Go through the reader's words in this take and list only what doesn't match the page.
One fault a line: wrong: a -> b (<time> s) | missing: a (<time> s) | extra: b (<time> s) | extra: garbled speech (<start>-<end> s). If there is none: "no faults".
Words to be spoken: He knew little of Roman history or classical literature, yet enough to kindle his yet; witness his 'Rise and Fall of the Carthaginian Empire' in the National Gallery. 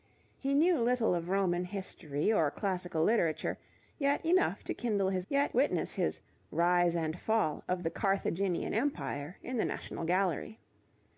no faults